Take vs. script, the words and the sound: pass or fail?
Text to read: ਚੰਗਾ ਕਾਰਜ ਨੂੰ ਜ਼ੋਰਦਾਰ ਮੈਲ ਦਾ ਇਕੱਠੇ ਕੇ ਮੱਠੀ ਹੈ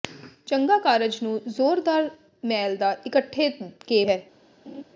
fail